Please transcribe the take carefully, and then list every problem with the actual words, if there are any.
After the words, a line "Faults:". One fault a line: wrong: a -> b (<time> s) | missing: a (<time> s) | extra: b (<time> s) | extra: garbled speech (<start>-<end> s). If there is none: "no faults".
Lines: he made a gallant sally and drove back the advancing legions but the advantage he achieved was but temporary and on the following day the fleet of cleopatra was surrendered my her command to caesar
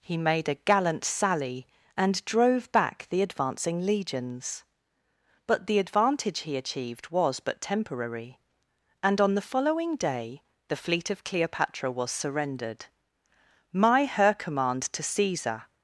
he made a gallant sally and drove back the advancing legions but the advantage he achieved was but temporary and on the following day the fleet of cleopatra was surrendered my her command to caesar
Faults:
no faults